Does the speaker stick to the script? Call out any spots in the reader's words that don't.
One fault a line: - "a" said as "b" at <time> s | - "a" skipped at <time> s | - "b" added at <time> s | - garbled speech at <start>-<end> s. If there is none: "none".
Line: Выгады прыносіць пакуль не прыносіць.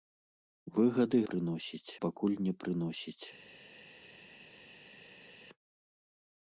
none